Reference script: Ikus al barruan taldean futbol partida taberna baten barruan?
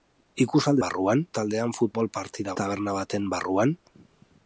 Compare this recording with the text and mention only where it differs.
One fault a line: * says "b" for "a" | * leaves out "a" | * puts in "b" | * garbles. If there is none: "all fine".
all fine